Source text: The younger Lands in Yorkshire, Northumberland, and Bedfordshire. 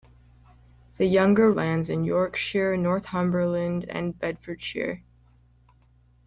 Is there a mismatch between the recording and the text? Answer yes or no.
no